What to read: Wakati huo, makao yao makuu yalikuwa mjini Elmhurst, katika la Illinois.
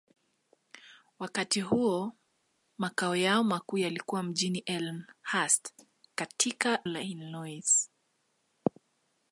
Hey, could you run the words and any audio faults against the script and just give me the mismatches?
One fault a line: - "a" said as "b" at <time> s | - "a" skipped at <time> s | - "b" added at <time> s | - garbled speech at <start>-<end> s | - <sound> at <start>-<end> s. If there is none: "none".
none